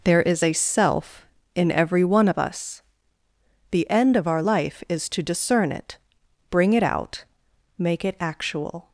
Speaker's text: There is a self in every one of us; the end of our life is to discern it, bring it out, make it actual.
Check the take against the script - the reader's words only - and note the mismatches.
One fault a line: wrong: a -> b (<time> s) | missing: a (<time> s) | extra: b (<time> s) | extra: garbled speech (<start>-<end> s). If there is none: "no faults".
no faults